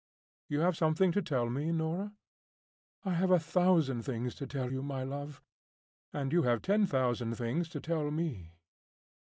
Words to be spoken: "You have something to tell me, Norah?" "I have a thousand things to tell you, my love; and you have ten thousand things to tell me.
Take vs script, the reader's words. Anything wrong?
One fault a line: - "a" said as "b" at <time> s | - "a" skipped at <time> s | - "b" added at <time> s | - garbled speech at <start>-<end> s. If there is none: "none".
none